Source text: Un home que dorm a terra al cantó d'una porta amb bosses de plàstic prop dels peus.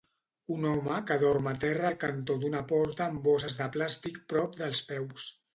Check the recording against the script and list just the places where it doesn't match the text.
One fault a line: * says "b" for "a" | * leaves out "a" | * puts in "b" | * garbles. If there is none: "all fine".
all fine